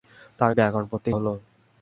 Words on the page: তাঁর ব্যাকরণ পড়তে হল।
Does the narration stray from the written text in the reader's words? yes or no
no